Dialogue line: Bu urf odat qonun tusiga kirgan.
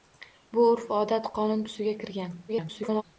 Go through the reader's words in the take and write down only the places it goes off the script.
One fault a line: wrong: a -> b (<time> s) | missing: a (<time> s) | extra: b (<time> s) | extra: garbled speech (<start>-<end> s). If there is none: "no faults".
extra: garbled speech (2.5-3.0 s)